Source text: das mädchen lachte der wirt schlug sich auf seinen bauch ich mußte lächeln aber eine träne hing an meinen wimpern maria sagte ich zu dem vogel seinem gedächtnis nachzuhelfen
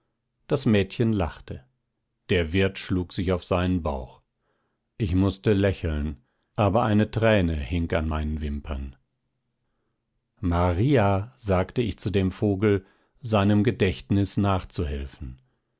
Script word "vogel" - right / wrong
right